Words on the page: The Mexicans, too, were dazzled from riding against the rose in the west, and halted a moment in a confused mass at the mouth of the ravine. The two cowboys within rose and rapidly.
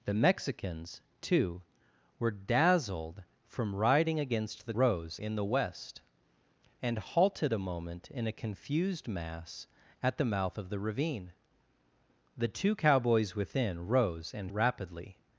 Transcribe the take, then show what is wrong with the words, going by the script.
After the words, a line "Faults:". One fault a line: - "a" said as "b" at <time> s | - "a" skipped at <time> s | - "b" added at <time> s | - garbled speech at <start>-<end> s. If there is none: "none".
The Mexicans, too, were dazzled from riding against the rose in the west, and halted a moment in a confused mass at the mouth of the ravine. The two cowboys within rose and rapidly.
Faults:
none